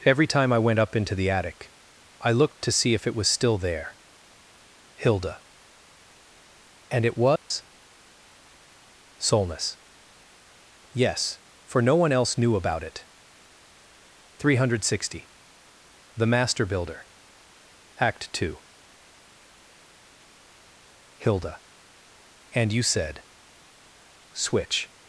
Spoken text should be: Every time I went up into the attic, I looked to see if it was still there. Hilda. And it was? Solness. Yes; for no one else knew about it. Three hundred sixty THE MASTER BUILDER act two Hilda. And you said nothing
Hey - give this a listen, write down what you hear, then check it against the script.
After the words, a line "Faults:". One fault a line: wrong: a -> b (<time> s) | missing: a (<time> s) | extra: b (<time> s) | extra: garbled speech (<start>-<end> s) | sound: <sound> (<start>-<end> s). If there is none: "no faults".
Every time I went up into the attic, I looked to see if it was still there. Hilda. And it was? Solness. Yes; for no one else knew about it. Three hundred sixty THE MASTER BUILDER act two Hilda. And you said switch
Faults:
sound: dropout (7.4-7.5 s)
wrong: nothing -> switch (24.3 s)